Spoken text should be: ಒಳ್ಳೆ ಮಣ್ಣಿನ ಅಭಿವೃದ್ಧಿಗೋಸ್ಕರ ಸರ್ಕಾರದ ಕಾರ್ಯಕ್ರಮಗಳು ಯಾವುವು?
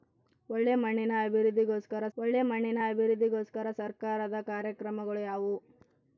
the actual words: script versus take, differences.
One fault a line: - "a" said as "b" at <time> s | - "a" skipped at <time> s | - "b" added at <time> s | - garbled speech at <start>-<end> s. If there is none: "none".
- "ಒಳ್ಳೆ ಮಣ್ಣಿನ ಅಭಿವೃದ್ಧಿಗೋಸ್ಕರ" added at 2.2 s